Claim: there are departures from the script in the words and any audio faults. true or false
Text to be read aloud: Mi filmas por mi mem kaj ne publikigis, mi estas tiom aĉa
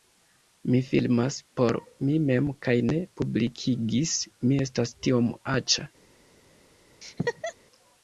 true